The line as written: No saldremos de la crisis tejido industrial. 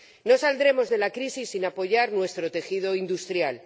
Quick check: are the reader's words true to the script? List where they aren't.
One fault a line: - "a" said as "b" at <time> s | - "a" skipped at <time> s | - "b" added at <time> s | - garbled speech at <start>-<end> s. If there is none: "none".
- "sin apoyar nuestro" added at 1.5 s